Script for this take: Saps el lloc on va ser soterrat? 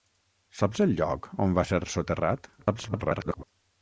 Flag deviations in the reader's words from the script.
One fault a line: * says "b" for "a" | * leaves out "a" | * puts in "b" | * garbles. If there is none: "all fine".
* garbles